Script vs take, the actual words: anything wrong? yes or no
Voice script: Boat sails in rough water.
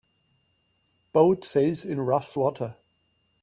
no